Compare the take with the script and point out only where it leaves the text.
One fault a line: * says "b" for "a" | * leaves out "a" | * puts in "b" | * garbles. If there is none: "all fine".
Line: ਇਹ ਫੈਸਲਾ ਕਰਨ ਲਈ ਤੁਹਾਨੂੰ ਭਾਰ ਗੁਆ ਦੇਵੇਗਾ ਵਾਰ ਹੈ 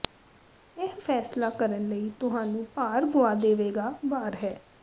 all fine